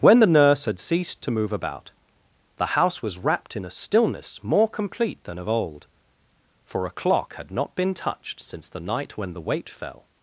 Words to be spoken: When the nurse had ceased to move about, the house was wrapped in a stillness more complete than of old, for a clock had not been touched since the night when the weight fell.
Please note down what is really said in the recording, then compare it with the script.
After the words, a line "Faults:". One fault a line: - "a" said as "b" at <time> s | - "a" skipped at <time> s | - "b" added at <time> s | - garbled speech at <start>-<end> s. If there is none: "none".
When the nurse had ceased to move about, the house was wrapped in a stillness more complete than of old, for a clock had not been touched since the night when the weight fell.
Faults:
none